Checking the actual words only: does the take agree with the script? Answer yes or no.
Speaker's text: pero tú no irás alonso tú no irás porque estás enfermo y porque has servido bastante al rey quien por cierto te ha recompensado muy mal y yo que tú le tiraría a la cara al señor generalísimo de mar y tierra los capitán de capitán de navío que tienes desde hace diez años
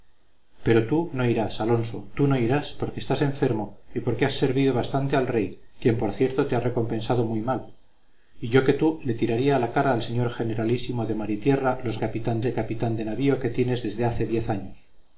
yes